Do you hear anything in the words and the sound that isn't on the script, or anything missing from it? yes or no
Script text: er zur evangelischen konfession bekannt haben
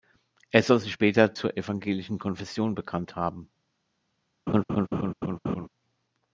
yes